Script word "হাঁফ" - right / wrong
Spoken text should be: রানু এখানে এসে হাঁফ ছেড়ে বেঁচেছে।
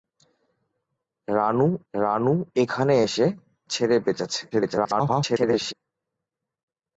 wrong